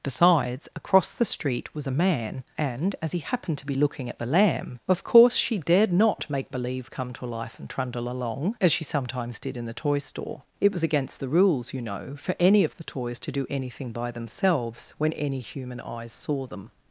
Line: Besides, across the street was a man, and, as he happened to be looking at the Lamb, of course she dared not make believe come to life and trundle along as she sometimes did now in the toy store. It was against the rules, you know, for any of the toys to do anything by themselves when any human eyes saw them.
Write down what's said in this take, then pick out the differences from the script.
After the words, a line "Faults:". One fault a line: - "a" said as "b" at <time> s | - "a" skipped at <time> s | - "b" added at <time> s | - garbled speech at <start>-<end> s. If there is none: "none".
Besides, across the street was a man, and, as he happened to be looking at the Lamb, of course she dared not make believe come to life and trundle along as she sometimes did in the toy store. It was against the rules, you know, for any of the toys to do anything by themselves when any human eyes saw them.
Faults:
- "now" skipped at 9.6 s